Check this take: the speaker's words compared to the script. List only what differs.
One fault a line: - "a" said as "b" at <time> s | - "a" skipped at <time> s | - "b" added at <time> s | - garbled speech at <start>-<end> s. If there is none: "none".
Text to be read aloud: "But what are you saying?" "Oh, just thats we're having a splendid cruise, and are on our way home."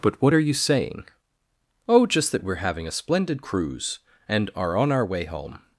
- "thats" said as "that" at 2.3 s